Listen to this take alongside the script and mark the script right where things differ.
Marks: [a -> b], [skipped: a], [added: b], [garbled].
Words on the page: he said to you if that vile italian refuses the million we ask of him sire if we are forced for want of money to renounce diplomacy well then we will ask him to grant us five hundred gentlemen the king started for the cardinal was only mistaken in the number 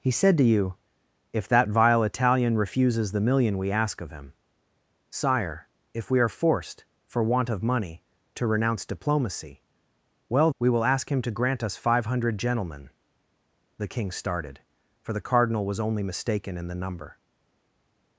he said to you if that vile italian refuses the million we ask of him sire if we are forced for want of money to renounce diplomacy well [skipped: then] we will ask him to grant us five hundred gentlemen the king started for the cardinal was only mistaken in the number